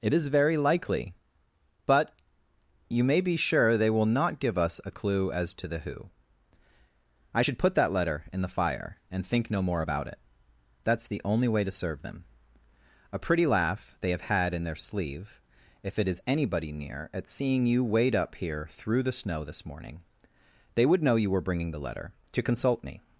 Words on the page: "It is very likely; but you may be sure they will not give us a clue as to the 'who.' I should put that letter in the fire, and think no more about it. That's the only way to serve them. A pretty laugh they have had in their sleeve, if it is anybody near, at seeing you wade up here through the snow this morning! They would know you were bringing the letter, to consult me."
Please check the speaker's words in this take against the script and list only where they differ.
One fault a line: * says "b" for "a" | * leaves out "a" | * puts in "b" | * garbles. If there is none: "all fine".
all fine